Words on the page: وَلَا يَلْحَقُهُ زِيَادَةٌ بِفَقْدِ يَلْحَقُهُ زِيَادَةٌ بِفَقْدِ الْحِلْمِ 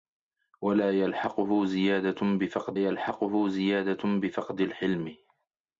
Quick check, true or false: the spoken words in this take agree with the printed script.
true